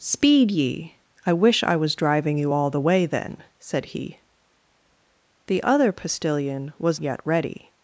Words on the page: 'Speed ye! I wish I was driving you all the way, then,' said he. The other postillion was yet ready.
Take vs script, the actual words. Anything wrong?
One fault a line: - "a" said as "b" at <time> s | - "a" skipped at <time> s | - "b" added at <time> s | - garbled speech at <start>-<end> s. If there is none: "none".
none